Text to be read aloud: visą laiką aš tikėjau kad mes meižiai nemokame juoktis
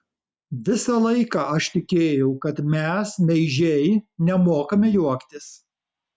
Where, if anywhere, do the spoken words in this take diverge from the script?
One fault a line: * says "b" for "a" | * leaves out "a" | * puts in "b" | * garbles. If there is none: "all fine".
all fine